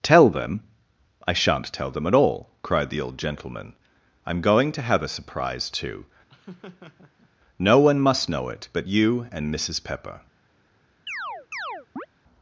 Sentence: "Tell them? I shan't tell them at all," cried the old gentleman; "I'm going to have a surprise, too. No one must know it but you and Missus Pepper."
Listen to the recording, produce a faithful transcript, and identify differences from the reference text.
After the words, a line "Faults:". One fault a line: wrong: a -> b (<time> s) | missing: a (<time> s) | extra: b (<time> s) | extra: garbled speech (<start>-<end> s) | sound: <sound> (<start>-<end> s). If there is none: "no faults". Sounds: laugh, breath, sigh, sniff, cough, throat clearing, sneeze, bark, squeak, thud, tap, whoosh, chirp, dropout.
"Tell them? I shan't tell them at all," cried the old gentleman; "I'm going to have a surprise, too. No one must know it but you and Missus Pepper."
Faults:
sound: laugh (6.3-7.3 s)
sound: chirp (11.1-12.1 s)